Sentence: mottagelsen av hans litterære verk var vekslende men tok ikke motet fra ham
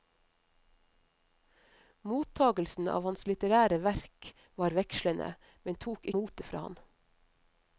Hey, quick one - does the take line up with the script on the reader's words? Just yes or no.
no